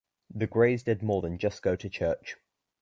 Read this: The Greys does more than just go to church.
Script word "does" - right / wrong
wrong